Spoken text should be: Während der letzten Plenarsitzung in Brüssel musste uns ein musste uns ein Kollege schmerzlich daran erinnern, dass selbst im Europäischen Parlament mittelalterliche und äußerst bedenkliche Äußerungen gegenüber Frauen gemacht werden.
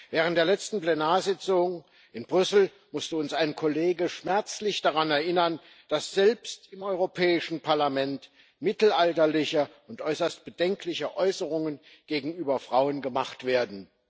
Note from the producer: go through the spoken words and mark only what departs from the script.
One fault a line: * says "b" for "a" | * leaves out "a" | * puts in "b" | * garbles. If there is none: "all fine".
* leaves out "musste uns ein"